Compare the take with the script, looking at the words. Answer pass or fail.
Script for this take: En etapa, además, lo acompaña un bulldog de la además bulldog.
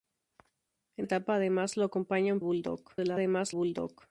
pass